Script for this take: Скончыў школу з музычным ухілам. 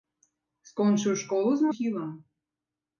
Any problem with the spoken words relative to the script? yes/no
yes